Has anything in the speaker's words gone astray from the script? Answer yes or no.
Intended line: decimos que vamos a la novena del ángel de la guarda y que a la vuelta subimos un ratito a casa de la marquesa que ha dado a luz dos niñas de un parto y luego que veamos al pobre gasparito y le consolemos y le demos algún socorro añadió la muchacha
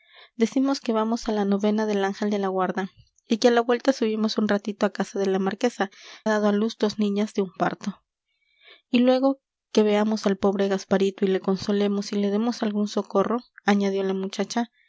yes